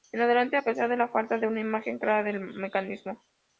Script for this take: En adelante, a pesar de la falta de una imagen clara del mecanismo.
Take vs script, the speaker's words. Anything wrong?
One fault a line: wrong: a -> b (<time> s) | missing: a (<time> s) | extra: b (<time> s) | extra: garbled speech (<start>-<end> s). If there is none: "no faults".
no faults